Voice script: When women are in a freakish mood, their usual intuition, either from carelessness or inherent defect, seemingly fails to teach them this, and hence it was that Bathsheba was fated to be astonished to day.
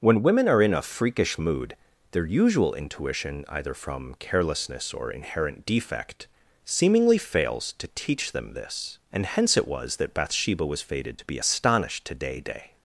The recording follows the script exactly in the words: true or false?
false